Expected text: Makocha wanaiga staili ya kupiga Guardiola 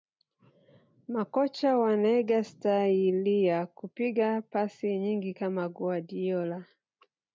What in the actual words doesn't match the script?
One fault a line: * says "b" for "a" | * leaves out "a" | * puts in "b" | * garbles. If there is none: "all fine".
* puts in "pasi nyingi kama"